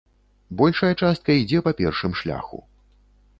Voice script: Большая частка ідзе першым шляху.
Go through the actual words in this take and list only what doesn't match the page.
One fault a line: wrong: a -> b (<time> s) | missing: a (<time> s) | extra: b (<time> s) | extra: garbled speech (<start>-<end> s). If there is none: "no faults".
extra: па (1.7 s)